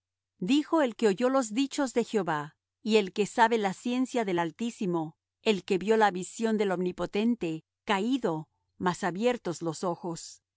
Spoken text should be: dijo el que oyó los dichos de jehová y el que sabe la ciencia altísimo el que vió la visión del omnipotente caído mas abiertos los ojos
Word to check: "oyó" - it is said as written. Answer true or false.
true